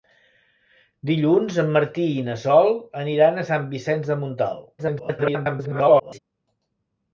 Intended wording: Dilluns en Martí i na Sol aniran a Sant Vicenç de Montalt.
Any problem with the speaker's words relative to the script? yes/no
yes